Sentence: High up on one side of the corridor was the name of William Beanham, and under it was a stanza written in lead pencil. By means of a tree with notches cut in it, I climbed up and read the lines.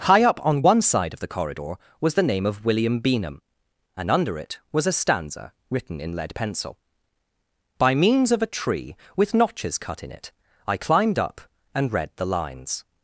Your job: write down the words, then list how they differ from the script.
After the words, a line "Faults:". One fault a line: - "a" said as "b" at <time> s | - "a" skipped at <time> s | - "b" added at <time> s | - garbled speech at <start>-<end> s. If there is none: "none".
High up on one side of the corridor was the name of William Beanham, and under it was a stanza written in lead pencil. By means of a tree with notches cut in it, I climbed up and read the lines.
Faults:
none